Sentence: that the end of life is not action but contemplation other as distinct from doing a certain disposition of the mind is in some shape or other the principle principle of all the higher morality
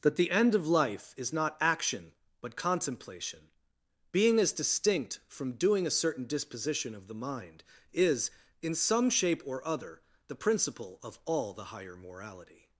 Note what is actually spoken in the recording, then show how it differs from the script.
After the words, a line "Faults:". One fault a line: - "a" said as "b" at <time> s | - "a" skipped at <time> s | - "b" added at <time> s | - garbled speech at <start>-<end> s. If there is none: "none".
that the end of life is not action but contemplation being as distinct from doing a certain disposition of the mind is in some shape or other the principle of all the higher morality
Faults:
- "other" said as "being" at 4.1 s
- "principle" skipped at 11.0 s